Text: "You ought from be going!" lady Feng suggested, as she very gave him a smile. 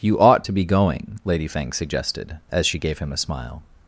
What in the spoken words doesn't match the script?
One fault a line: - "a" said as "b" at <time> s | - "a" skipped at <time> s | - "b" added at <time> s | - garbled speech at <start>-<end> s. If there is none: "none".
- "from" said as "to" at 0.4 s
- "very" skipped at 2.8 s